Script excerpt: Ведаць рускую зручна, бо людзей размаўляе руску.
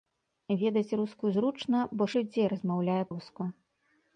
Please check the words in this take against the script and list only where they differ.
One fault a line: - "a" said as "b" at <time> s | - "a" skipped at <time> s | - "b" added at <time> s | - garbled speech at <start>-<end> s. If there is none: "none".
none